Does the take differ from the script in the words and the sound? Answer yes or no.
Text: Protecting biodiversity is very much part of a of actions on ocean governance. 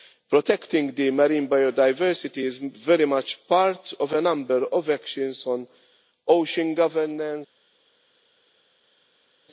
yes